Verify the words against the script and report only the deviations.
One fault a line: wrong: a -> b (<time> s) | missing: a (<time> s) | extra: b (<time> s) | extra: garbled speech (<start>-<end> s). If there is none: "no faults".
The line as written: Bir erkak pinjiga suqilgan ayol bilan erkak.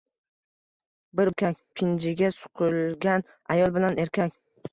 no faults